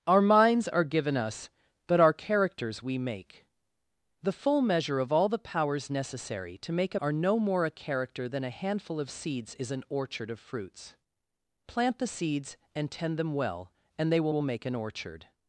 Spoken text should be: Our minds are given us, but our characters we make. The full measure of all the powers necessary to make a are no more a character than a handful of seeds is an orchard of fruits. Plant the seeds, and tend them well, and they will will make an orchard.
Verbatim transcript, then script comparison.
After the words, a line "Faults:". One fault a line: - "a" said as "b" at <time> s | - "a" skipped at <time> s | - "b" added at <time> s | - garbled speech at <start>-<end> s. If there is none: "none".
Our minds are given us, but our characters we make. The full measure of all the powers necessary to make a are no more a character than a handful of seeds is an orchard of fruits. Plant the seeds, and tend them well, and they will will make an orchard.
Faults:
none